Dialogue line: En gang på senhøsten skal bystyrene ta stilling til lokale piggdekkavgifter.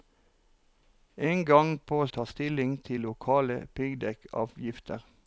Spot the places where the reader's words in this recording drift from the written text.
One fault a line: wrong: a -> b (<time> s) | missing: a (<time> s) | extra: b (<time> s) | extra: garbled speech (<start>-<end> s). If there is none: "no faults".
missing: senhøsten skal bystyrene (2.1 s)